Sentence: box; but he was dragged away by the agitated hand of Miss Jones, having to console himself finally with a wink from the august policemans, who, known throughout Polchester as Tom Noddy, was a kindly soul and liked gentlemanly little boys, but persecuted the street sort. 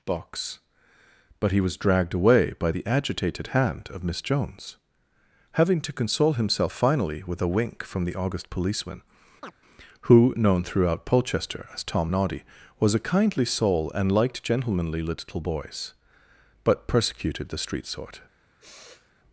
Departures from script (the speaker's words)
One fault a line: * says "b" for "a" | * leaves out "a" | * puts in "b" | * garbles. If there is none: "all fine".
* says "policeman" for "policemans"